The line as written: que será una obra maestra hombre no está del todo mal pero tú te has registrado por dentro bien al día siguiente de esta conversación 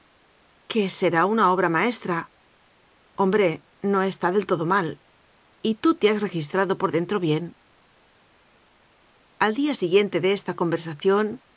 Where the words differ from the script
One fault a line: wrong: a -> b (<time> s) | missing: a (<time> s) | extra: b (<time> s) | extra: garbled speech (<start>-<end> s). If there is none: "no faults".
wrong: pero -> y (5.6 s)